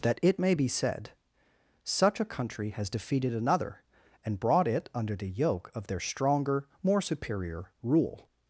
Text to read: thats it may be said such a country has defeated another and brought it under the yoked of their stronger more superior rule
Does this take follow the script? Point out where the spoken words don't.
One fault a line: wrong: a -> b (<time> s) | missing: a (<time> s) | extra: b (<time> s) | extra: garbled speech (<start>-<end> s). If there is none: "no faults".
wrong: thats -> that (0.0 s)
wrong: yoked -> yoke (5.3 s)